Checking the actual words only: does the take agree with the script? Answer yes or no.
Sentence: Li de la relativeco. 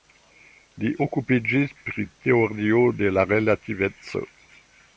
no